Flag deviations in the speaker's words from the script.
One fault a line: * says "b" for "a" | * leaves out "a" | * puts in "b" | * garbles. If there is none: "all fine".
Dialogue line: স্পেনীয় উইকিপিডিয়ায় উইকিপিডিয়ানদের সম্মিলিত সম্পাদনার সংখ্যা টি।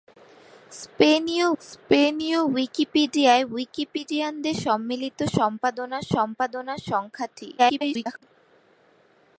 * puts in "স্পেনীয়"
* puts in "সম্পাদনার"
* garbles